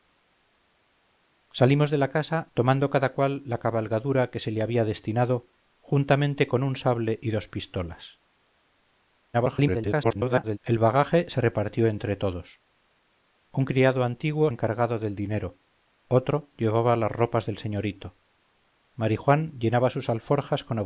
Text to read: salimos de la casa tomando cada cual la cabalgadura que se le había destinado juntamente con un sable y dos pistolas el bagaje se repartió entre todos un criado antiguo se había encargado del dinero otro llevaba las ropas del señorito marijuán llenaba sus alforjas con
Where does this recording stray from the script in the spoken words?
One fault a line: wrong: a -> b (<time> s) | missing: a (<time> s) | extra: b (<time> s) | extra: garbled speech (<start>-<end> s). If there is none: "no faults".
extra: garbled speech (9.3-10.6 s)
missing: se había (14.5 s)